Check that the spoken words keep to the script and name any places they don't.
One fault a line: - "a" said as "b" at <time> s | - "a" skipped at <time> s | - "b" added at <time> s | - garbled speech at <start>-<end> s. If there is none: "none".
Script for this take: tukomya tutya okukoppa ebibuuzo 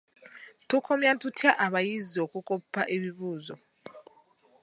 - "abayizi" added at 1.6 s